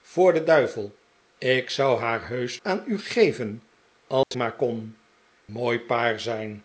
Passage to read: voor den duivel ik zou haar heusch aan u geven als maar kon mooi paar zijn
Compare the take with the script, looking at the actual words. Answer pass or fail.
pass